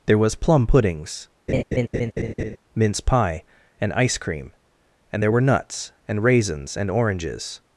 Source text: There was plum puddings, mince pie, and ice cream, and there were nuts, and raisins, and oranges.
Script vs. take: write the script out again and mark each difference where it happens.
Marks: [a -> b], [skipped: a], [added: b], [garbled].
There was plum puddings, mince pie, and ice cream, and there were nuts, and raisins, and oranges.